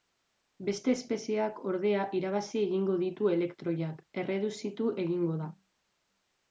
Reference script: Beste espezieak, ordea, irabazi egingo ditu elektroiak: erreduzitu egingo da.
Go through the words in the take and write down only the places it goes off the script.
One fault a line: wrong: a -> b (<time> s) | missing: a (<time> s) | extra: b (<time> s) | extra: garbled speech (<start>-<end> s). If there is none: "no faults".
no faults